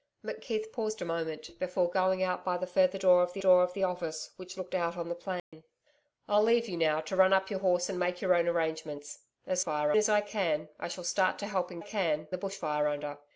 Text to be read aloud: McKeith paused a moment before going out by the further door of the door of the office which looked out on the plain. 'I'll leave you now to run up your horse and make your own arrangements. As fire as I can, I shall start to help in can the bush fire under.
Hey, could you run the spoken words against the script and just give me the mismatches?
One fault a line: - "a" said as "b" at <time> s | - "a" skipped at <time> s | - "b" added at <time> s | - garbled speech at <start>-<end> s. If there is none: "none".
none